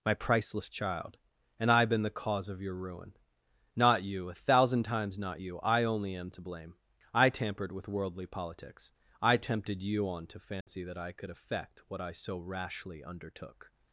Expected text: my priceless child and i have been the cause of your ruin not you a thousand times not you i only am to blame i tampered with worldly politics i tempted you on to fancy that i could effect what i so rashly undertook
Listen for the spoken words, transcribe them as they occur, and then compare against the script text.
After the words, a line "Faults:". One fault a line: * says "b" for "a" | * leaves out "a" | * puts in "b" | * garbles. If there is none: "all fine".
my priceless child and i been the cause of your ruin not you a thousand times not you i only am to blame i tampered with worldly politics i tempted you on to fancy that i could effect what i so rashly undertook
Faults:
* leaves out "have"